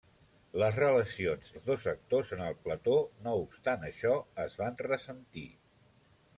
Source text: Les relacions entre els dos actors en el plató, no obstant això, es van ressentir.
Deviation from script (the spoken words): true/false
true